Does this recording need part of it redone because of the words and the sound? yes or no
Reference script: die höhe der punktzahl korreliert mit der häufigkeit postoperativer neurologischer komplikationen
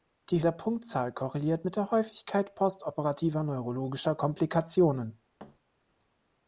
yes